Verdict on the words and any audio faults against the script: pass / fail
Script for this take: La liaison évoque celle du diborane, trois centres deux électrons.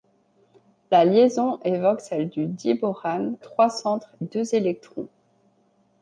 pass